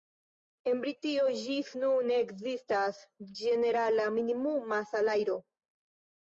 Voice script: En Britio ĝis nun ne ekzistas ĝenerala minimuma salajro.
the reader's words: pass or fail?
pass